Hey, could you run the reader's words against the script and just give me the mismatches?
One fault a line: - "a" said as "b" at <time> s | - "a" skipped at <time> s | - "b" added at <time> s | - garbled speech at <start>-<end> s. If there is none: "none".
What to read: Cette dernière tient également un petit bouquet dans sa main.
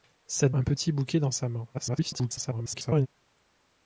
- "dernière tient également" skipped at 0.5 s
- garbled speech at 1.7-3.1 s